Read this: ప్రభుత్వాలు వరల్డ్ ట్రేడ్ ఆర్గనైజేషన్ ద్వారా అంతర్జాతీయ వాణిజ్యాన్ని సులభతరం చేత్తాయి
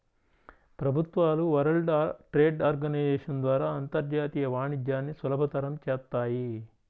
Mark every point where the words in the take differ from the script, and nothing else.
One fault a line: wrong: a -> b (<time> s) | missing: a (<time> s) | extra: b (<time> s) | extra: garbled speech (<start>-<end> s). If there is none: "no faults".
no faults